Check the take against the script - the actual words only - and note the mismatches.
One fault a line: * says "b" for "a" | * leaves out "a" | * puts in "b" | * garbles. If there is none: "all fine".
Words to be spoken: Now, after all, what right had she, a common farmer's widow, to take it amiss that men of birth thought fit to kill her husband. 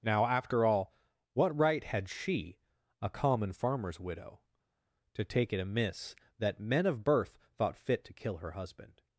all fine